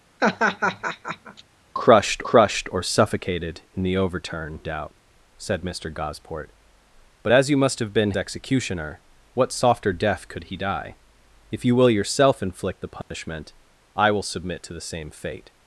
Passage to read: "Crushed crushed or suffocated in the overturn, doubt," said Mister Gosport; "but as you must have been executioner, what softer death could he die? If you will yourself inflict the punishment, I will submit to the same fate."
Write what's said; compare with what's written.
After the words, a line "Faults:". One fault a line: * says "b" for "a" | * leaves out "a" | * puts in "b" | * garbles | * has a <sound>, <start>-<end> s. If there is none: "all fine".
"Crushed crushed or suffocated in the overturn, doubt," said Mister Gosport; "but as you must have been executioner, what softer death could he die? If you will yourself inflict the punishment, I will submit to the same fate."
Faults:
* has a laugh, 0.2-1.4 s
* has a dropout, 13.0-13.1 s